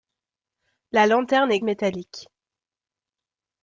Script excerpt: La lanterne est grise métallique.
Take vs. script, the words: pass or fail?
fail